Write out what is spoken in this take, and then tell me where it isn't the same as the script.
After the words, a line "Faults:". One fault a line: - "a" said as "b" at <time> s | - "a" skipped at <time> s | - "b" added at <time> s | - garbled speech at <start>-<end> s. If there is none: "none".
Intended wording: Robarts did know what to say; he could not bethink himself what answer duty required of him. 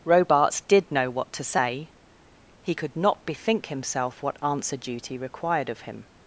Robarts did know what to say; he could not bethink himself what answer duty required of him.
Faults:
none